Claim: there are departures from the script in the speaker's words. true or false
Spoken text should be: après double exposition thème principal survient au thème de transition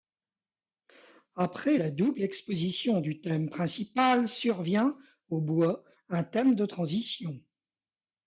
true